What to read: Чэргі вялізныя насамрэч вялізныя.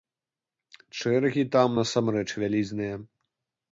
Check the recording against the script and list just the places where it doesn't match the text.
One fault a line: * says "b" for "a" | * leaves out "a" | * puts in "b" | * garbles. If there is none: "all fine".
* says "там" for "вялізныя"